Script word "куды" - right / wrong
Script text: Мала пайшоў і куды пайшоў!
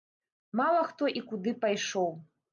right